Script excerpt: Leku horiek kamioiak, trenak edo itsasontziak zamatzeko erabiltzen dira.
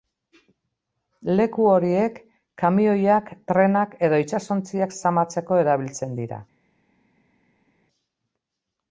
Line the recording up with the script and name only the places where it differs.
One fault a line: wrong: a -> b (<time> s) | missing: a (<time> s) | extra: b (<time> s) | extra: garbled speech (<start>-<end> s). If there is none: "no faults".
no faults